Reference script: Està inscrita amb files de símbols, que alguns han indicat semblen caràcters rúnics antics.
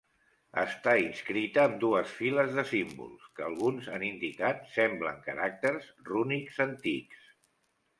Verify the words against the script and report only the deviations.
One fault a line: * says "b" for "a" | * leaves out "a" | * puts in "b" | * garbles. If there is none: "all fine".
* puts in "dues"